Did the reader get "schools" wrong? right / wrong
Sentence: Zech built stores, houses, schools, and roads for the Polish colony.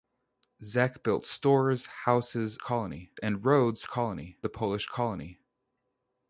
wrong